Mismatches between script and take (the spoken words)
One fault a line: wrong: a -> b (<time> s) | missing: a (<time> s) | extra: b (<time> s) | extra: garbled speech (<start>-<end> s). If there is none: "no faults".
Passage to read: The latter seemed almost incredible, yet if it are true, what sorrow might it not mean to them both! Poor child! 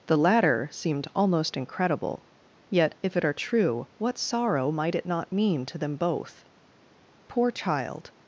no faults